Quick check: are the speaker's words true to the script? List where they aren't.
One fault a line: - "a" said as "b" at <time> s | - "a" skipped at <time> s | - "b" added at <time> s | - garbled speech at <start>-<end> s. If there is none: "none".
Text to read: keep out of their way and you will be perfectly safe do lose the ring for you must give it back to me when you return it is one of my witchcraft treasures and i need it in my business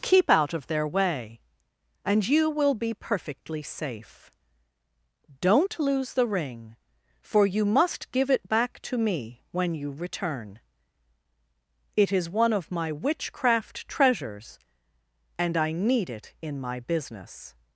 - "do" said as "don't" at 5.4 s